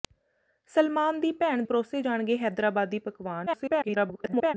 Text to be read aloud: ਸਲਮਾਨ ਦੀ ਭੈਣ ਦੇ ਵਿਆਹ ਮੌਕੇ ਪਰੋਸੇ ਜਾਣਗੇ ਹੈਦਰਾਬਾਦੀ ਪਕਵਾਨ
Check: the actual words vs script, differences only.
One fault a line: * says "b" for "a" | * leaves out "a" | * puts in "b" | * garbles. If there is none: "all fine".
* leaves out "ਦੇ ਵਿਆਹ ਮੌਕੇ"
* garbles